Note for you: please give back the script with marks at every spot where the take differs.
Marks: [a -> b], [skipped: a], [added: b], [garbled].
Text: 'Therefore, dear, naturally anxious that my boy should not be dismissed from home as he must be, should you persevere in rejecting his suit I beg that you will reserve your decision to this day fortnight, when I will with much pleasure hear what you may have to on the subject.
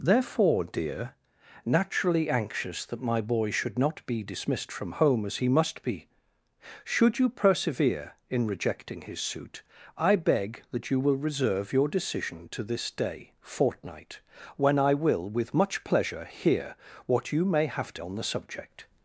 'Therefore, dear, naturally anxious that my boy should not be dismissed from home as he must be, should you persevere in rejecting his suit I beg that you will reserve your decision to this day fortnight, when I will with much pleasure hear what you may have to on the subject.